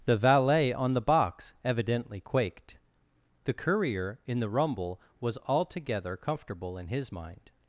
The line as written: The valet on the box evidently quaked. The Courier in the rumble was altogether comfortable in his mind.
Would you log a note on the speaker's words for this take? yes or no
no